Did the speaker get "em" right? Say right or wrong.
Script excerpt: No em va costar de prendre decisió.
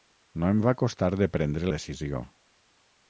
right